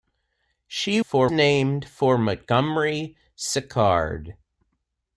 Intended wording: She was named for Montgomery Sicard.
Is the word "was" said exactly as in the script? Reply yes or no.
no